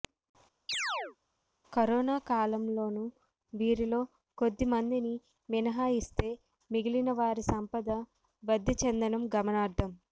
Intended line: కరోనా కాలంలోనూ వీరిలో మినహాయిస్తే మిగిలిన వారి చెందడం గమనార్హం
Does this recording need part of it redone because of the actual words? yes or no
yes